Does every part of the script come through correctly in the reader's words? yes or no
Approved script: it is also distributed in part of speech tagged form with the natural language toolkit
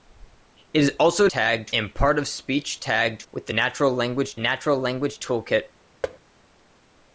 no